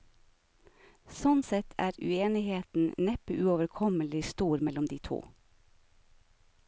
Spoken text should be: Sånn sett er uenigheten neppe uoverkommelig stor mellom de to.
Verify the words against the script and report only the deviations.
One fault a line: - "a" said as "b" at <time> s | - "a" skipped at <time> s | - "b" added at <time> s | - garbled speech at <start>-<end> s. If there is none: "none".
none